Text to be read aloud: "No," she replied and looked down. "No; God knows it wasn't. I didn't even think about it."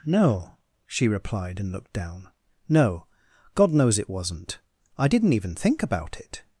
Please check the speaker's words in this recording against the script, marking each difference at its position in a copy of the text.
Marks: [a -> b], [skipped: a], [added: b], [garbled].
"No," she replied and looked down. "No; God knows it wasn't. I didn't even think about it."